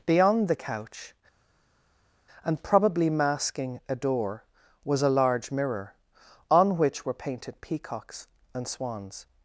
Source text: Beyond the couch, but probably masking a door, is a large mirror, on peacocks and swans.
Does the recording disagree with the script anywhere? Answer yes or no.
yes